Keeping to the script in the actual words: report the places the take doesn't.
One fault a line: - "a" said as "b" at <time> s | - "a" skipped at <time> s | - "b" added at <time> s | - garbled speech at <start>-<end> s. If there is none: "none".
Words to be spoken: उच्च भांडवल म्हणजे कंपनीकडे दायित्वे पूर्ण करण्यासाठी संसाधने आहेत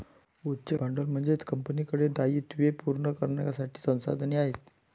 none